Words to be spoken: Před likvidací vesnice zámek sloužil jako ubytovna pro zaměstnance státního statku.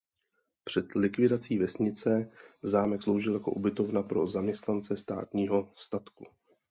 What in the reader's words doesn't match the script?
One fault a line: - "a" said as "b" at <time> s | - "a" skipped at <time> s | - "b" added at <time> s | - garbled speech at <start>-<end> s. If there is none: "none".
none